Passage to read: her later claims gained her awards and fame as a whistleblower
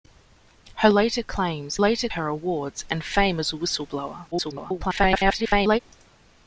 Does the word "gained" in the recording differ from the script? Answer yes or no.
yes